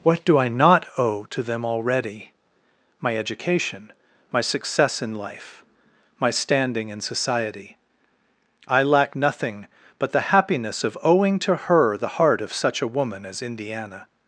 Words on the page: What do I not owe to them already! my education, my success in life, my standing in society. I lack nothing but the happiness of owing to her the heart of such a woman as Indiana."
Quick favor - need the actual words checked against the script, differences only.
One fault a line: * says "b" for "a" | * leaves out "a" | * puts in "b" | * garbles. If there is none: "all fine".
all fine